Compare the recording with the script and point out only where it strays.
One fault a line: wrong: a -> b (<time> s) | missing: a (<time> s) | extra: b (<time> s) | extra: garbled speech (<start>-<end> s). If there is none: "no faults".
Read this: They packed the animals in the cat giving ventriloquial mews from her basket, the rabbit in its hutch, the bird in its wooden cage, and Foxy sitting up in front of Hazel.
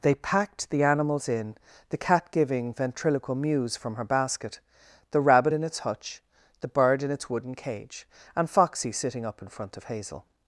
no faults